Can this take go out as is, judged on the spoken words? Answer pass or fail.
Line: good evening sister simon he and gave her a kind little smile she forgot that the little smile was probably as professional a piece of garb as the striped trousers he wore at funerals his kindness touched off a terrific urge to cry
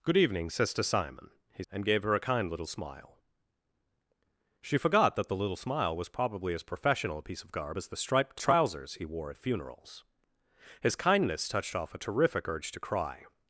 pass